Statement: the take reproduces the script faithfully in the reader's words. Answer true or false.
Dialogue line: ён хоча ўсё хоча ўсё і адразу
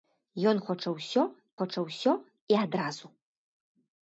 true